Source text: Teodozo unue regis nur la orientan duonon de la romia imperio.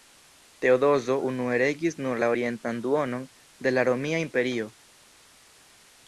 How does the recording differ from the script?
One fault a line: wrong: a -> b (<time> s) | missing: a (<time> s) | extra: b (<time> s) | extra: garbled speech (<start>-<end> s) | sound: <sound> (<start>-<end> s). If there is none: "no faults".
no faults